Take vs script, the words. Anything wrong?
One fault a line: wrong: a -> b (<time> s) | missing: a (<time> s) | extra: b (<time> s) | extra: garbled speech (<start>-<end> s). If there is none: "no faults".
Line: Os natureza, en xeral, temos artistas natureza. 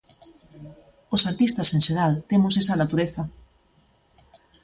wrong: natureza -> artistas (1.3 s)
wrong: artistas -> esa (2.6 s)